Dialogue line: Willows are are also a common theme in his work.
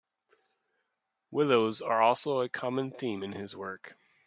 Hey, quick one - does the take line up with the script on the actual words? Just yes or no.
no